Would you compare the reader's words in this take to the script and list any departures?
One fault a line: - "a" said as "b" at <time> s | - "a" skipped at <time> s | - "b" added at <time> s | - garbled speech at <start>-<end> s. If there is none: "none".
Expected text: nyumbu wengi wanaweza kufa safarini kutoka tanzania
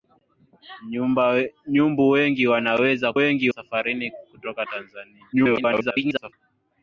- "kufa" said as "wengi" at 3.1 s
- garbled speech at 5.3-6.3 s